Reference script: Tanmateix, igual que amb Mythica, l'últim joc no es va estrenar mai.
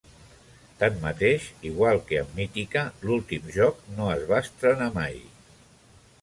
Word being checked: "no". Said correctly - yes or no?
yes